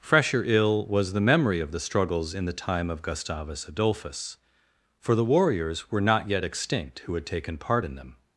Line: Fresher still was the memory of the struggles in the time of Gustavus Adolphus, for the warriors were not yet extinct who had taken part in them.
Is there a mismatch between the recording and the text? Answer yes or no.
yes